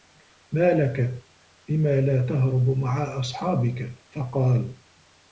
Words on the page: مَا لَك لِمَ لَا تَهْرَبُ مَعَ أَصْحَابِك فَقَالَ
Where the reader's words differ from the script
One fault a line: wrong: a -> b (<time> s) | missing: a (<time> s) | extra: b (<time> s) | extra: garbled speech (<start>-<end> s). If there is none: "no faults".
no faults